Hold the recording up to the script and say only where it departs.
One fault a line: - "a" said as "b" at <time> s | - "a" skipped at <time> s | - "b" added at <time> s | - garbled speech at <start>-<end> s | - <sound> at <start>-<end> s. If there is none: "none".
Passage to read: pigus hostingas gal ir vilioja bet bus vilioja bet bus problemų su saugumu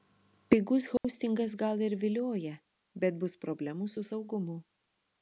- dropout at 1.0-1.0 s
- "vilioja bet bus" skipped at 3.4 s